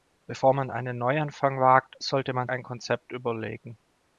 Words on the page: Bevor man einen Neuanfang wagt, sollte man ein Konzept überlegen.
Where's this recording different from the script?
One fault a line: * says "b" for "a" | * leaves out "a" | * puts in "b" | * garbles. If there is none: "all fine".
all fine